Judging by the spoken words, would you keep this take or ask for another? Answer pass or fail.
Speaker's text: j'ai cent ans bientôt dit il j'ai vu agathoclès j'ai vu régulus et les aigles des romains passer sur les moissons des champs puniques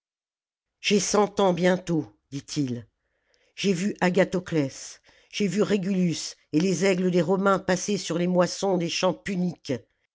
pass